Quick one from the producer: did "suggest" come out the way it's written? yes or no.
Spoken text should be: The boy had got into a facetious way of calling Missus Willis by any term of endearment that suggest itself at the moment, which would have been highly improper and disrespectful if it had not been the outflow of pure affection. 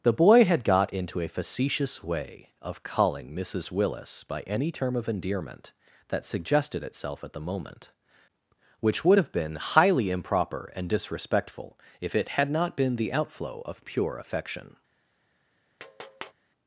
no